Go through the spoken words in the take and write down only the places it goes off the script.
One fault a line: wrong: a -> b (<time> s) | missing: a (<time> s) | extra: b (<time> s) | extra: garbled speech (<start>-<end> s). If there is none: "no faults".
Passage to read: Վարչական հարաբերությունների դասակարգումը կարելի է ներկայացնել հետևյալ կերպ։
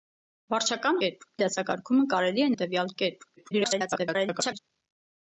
wrong: հարաբերությունների -> կերպ (1.1 s)
missing: ներկայացնել (2.5 s)
extra: garbled speech (3.4-4.6 s)